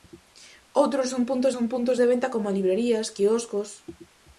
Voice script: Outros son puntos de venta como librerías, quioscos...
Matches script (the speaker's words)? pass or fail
fail